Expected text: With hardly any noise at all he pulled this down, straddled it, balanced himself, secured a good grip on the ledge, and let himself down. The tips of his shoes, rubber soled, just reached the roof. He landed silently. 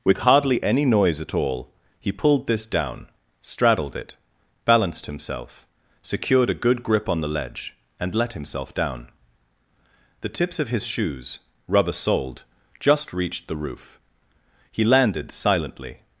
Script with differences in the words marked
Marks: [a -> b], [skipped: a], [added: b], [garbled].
With hardly any noise at all he pulled this down, straddled it, balanced himself, secured a good grip on the ledge, and let himself down. The tips of his shoes, rubber soled, just reached the roof. He landed silently.